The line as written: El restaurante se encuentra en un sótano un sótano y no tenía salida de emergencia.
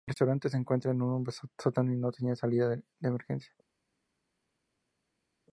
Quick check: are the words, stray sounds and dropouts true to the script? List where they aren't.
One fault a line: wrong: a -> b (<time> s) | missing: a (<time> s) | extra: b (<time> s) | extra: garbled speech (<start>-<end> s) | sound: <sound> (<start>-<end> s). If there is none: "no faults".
missing: un sótano (1.9 s)